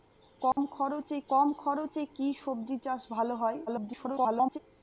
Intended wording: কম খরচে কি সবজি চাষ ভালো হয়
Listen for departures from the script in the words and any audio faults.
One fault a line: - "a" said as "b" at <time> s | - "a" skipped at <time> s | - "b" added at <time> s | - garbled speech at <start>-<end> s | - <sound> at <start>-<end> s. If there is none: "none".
- dropout at 0.5-0.6 s
- "কম খরচে" added at 1.3 s
- garbled speech at 3.7-4.6 s